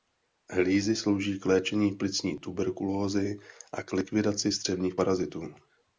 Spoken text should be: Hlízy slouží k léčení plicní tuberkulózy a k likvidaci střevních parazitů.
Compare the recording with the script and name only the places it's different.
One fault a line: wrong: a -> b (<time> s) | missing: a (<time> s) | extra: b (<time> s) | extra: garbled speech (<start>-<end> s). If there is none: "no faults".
no faults